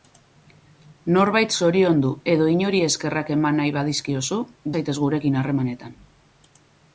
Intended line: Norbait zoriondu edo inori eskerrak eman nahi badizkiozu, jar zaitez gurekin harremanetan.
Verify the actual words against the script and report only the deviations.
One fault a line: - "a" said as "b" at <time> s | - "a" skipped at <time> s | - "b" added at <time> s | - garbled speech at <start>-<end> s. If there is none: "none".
- "jar" skipped at 4.4 s